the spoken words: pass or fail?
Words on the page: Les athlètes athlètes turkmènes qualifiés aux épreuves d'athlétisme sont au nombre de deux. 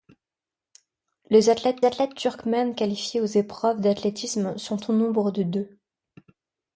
pass